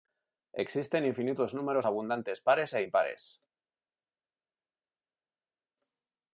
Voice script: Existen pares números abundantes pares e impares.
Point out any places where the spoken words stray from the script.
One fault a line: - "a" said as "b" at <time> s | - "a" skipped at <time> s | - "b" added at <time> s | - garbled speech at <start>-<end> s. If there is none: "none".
- "pares" said as "infinitos" at 1.1 s